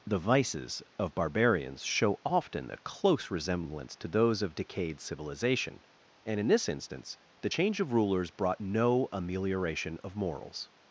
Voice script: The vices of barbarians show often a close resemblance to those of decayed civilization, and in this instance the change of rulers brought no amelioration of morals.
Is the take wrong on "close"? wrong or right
right